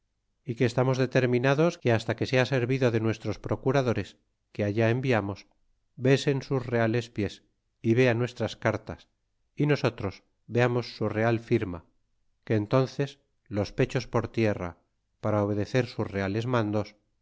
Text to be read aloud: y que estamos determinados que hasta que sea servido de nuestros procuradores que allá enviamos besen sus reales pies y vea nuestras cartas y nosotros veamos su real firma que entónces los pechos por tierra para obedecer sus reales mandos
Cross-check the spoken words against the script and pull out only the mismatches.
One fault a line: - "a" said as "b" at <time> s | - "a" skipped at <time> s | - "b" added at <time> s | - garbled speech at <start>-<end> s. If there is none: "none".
none